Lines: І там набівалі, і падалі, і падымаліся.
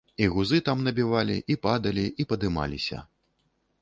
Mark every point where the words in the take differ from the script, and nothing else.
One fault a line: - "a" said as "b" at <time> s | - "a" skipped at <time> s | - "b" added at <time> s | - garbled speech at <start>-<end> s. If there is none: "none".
- "гузы" added at 0.3 s